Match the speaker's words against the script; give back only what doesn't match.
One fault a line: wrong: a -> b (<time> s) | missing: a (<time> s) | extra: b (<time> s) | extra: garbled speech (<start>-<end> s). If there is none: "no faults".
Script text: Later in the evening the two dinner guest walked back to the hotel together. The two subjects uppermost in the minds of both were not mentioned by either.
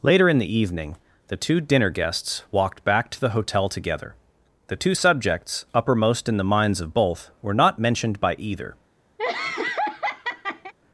wrong: guest -> guests (1.9 s)